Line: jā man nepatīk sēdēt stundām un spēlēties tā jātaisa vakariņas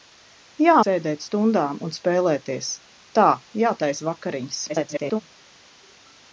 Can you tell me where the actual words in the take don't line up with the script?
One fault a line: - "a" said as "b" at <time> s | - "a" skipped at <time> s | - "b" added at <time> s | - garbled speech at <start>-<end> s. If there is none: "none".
- "man nepatīk" skipped at 0.8 s
- garbled speech at 4.7-5.2 s